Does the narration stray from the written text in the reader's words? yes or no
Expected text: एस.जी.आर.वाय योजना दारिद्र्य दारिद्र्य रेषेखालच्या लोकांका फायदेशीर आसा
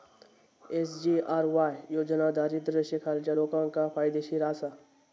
yes